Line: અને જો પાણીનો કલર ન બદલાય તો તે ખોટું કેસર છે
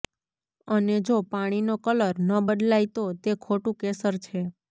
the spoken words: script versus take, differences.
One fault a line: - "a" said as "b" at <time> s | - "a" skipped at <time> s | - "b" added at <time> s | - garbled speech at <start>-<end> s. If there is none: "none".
none